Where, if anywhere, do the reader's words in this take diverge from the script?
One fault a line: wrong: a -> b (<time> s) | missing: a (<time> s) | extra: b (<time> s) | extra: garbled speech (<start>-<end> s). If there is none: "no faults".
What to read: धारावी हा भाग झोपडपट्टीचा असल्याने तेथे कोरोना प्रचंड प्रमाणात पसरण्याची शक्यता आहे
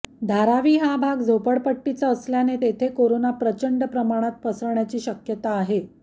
no faults